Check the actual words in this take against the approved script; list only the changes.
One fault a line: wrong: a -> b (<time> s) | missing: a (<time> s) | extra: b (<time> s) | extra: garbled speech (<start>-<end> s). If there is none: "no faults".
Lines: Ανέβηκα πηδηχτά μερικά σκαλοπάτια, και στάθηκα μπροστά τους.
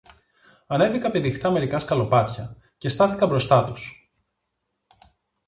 no faults